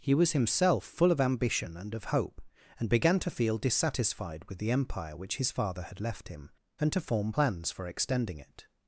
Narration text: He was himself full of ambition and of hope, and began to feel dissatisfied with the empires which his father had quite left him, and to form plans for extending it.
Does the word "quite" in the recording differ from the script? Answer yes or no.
yes